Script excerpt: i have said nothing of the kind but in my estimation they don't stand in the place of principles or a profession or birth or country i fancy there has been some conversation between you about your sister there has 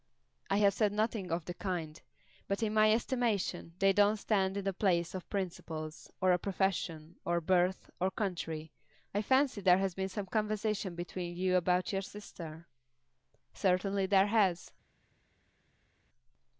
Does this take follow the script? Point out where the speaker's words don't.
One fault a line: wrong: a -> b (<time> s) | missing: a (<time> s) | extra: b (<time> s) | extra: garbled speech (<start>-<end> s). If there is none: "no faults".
extra: certainly (13.5 s)